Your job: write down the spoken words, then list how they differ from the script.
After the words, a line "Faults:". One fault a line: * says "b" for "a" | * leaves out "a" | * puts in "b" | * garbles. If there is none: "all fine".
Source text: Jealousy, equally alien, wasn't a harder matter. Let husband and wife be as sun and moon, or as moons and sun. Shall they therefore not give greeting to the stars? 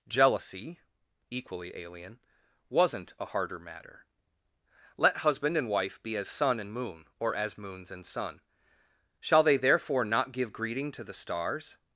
Jealousy, equally alien, wasn't a harder matter. Let husband and wife be as sun and moon, or as moons and sun. Shall they therefore not give greeting to the stars?
Faults:
all fine